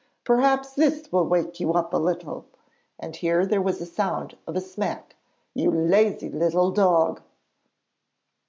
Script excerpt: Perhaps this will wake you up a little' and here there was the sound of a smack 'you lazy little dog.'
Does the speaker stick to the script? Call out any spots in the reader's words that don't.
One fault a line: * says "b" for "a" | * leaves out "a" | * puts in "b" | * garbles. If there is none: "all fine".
all fine